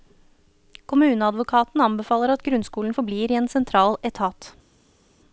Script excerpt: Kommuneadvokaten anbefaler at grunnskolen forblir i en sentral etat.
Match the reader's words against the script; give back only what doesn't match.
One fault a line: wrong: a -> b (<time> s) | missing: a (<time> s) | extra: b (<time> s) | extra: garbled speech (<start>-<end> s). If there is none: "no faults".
no faults